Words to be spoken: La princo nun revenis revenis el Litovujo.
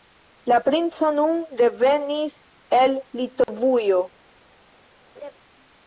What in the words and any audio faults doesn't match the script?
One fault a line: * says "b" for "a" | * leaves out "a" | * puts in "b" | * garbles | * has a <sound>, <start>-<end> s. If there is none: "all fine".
* leaves out "revenis"
* has a dropout, 3.4-3.5 s
* has a laugh, 5.2-5.3 s